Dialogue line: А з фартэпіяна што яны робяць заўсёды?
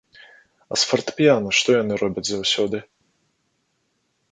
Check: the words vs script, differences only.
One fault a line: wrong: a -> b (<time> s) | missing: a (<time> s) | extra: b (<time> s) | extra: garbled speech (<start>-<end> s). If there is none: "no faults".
no faults